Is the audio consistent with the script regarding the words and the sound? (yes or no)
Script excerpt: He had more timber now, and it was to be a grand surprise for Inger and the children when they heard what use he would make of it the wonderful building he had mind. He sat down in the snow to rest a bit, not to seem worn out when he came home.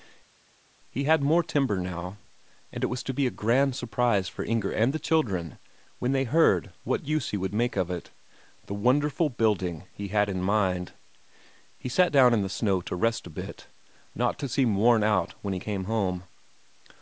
no